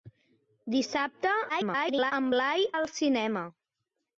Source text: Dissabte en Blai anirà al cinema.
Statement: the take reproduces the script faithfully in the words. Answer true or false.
false